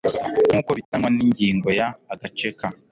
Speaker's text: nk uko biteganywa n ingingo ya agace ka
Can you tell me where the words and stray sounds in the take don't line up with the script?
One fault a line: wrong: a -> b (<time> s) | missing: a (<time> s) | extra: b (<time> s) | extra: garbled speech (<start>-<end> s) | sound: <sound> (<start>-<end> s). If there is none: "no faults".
sound: dropout (0.8-0.9 s)